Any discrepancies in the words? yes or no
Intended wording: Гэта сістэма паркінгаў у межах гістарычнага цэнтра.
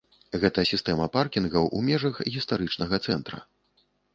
no